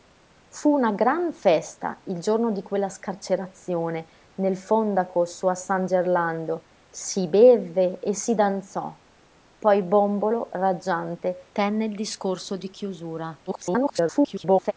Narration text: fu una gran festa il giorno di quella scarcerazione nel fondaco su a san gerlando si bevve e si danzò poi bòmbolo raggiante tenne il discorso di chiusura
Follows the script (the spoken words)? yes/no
no